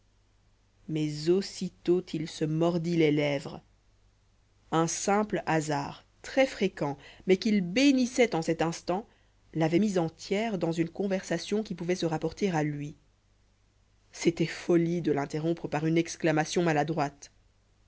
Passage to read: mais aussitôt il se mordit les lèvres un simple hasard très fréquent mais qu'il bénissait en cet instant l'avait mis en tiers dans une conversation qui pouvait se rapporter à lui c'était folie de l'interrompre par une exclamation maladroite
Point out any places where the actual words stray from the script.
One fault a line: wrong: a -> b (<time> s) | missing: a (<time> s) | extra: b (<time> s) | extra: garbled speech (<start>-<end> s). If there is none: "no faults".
no faults